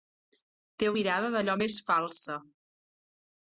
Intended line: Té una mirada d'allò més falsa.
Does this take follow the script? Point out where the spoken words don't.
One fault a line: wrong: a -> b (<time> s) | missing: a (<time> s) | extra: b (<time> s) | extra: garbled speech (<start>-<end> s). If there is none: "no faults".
missing: una (0.9 s)